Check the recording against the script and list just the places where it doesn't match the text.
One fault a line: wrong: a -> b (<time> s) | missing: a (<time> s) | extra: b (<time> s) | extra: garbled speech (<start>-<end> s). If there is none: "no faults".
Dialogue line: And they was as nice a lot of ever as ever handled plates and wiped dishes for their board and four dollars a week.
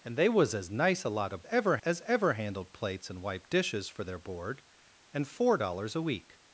no faults